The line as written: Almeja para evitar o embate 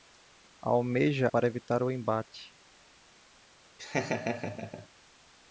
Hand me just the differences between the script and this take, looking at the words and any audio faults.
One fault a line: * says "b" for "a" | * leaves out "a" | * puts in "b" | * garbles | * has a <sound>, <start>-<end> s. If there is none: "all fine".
* has a laugh, 3.8-4.9 s